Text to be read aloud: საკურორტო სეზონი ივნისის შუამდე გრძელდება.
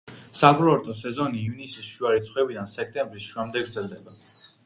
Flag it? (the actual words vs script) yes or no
yes